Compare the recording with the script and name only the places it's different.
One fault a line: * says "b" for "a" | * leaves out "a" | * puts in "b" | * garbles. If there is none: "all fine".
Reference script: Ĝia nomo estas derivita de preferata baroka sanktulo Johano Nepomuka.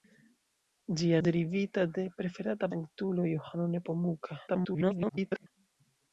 * leaves out "nomo estas"
* leaves out "baroka"
* garbles